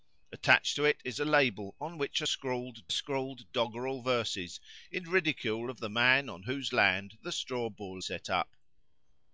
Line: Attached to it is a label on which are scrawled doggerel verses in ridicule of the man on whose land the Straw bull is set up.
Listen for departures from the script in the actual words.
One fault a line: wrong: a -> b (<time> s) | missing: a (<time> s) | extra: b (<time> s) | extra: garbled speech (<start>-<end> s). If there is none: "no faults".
extra: scrawled (2.9 s)
missing: is (8.0 s)